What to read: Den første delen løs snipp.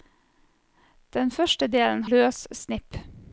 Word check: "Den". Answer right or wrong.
right